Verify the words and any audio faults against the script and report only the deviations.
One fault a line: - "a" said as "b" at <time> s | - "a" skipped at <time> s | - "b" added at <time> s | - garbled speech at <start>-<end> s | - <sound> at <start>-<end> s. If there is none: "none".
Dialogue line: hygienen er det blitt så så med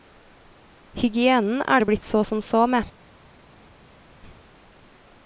- "som" added at 2.2 s